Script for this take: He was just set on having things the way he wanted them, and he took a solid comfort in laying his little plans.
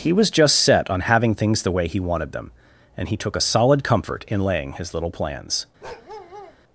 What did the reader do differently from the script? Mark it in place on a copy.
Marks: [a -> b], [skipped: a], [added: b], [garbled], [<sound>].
He was just set on having things the way he wanted them, and he took a solid comfort in laying his little plans. [bark]